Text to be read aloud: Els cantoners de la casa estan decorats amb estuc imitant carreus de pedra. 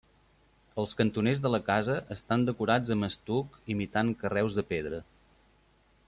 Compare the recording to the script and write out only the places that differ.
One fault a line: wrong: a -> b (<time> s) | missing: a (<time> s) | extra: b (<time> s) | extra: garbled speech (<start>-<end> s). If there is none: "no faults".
no faults